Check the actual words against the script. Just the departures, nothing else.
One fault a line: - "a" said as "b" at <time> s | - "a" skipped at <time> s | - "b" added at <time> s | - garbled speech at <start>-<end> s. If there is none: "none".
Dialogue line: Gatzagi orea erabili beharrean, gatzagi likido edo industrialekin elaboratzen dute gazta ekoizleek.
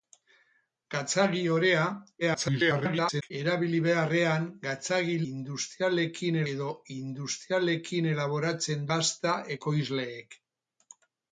- garbled speech at 2.2-3.3 s
- "likido" said as "industrialekin" at 5.3 s
- "dute" skipped at 8.9 s